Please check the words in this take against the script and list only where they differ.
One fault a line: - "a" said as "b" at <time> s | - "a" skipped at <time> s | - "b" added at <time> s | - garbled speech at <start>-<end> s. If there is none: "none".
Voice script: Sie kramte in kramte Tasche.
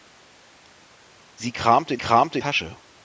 none